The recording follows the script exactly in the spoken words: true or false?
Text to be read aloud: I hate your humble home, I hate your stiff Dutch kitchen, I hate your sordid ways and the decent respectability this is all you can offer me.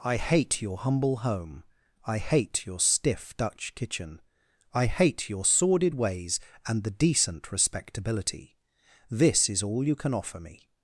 true